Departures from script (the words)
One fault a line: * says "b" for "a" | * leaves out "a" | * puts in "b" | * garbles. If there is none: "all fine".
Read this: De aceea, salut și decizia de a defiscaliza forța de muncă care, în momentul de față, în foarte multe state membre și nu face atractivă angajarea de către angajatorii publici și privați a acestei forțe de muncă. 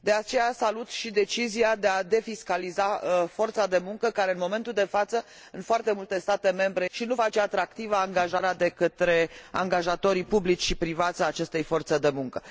all fine